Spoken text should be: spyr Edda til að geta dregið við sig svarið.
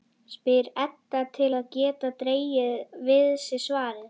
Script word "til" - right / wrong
right